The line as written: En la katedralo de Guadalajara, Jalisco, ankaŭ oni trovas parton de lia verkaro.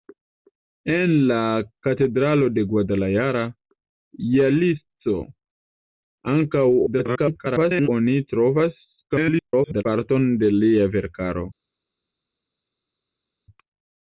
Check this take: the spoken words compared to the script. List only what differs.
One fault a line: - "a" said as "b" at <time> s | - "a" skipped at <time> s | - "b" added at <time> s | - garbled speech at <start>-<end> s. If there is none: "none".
- garbled speech at 6.9-7.9 s
- garbled speech at 9.1-9.8 s